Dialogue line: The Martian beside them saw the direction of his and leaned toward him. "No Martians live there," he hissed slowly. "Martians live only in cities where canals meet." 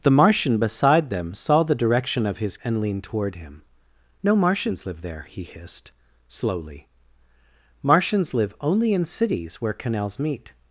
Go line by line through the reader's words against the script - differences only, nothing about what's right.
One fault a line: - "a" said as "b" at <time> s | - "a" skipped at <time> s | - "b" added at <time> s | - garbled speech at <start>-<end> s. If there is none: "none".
none